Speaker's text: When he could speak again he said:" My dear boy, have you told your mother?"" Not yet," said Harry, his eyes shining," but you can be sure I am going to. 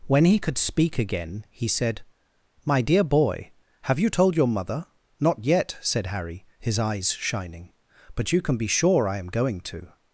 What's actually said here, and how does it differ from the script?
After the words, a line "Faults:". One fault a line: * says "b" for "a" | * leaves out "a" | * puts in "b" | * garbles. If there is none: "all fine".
When he could speak again he said:" My dear boy, have you told your mother?"" Not yet," said Harry, his eyes shining," but you can be sure I am going to.
Faults:
all fine